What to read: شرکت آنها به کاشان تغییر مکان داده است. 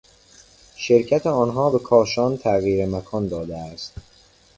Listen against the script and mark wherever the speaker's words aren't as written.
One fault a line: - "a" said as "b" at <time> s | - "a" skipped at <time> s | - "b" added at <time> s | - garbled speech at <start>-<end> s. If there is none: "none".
none